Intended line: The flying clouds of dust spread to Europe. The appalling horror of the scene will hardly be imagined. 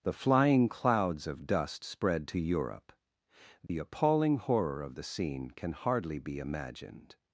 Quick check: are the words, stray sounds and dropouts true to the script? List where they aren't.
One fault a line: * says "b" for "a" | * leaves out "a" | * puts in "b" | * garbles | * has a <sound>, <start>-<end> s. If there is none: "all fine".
* has a dropout, 3.7-3.7 s
* says "can" for "will"